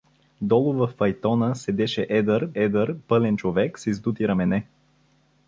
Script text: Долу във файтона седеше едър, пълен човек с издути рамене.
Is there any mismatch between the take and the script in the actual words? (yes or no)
yes